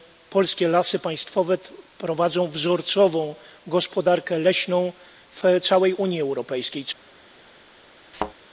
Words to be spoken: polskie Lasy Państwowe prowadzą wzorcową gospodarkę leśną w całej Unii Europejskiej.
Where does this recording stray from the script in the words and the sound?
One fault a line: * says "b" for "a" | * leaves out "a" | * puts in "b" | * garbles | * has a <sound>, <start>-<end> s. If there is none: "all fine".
* has a thud, 8.1-8.3 s